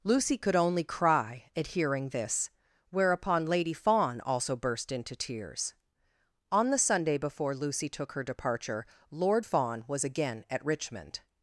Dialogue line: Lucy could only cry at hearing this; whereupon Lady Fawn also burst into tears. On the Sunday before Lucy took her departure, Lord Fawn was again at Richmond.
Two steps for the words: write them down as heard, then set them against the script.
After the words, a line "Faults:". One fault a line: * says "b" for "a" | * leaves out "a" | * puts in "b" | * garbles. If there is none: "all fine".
Lucy could only cry at hearing this; whereupon Lady Fawn also burst into tears. On the Sunday before Lucy took her departure, Lord Fawn was again at Richmond.
Faults:
all fine